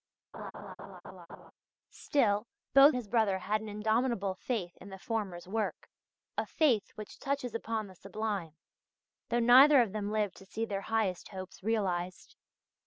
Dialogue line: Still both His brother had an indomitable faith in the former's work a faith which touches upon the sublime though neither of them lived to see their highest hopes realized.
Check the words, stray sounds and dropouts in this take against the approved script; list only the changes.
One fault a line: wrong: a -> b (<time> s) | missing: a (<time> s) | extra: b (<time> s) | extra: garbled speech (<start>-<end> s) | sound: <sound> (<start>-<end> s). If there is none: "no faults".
sound: laugh (0.3-1.5 s)